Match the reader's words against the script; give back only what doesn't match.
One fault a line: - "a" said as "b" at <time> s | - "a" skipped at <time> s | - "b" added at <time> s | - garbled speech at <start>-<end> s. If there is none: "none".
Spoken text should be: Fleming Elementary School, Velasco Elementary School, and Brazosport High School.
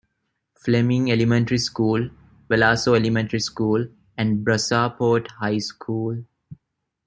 none